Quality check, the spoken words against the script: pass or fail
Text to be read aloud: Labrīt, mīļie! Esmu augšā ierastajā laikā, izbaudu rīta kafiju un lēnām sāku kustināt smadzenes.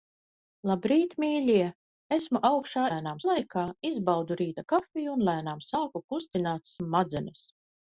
fail